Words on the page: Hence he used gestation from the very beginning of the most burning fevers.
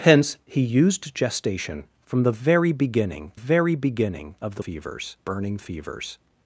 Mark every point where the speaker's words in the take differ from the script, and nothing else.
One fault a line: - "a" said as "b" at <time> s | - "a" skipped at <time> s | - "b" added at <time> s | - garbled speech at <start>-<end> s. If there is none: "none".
- "very beginning" added at 3.3 s
- "most" said as "fevers" at 4.6 s